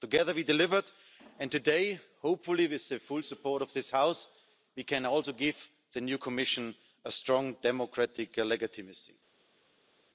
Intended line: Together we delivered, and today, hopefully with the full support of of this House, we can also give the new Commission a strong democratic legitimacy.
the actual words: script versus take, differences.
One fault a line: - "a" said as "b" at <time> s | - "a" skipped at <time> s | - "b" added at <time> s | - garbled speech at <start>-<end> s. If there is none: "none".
- "of" skipped at 3.7 s